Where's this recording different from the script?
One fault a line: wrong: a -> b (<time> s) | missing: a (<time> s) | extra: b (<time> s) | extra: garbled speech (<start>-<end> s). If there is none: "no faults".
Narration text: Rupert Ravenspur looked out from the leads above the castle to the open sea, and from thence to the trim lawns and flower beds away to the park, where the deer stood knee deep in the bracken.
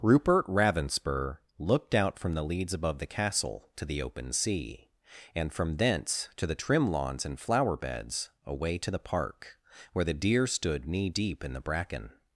no faults